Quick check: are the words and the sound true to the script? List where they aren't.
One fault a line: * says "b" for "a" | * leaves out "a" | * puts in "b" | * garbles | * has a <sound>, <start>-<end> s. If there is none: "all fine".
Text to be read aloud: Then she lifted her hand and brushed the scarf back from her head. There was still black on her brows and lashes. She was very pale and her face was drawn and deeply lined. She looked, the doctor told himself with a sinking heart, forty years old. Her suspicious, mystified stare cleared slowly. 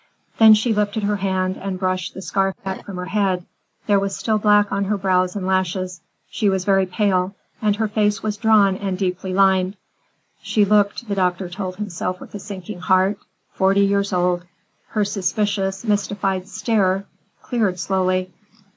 all fine